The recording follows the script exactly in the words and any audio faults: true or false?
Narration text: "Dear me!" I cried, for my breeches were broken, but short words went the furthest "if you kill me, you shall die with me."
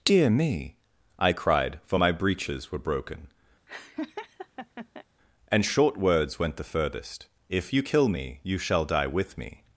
false